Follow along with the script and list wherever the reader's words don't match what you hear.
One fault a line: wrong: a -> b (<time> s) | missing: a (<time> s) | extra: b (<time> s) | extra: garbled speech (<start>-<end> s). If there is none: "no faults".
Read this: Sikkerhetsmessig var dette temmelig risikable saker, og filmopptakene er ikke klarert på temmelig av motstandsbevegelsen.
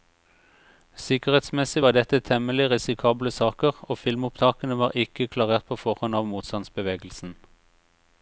wrong: er -> var (4.8 s)
wrong: temmelig -> forhånd (5.8 s)